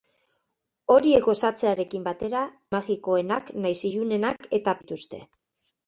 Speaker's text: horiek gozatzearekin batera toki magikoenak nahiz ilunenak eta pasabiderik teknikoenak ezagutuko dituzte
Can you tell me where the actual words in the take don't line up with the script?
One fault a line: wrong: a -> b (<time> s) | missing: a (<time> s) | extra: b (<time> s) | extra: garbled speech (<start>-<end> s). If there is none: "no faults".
missing: toki (2.4 s)
missing: pasabiderik teknikoenak ezagutuko (4.8 s)